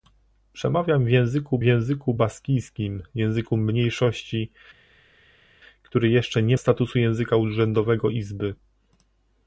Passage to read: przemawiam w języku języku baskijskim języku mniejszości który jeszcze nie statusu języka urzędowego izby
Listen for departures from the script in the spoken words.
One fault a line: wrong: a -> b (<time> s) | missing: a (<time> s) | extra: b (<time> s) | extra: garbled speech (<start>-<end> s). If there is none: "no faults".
no faults